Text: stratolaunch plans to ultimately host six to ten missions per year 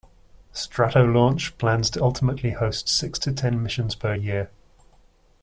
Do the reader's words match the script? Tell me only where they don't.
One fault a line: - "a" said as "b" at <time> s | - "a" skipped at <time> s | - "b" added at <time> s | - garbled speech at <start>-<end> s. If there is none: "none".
none